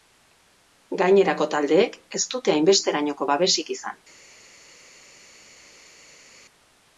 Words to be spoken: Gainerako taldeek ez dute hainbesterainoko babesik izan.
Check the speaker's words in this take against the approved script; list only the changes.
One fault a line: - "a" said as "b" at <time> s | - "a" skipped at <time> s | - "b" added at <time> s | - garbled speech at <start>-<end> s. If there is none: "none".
none